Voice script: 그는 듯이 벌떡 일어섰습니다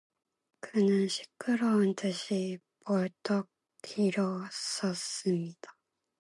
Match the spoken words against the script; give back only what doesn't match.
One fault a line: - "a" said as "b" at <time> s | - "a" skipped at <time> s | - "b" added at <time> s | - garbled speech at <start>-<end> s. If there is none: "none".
- "시끄러운" added at 1.1 s